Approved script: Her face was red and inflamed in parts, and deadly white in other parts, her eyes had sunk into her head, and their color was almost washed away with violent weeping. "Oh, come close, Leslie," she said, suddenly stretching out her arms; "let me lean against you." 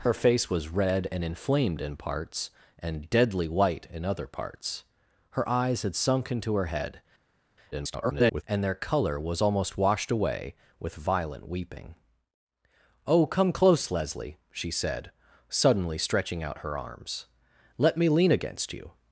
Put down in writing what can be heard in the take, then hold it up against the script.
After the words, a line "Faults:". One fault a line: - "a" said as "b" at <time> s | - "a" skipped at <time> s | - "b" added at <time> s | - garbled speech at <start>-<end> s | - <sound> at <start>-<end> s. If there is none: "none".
Her face was red and inflamed in parts, and deadly white in other parts, her eyes had sunk into her head, [garbled] and their color was almost washed away with violent weeping. "Oh, come close, Leslie," she said, suddenly stretching out her arms; "let me lean against you."
Faults:
- garbled speech at 7.7-8.4 s